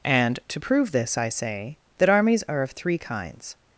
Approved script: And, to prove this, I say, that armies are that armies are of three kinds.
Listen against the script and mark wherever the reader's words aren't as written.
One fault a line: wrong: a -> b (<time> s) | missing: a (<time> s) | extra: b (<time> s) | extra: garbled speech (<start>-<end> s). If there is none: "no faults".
missing: that armies are (2.6 s)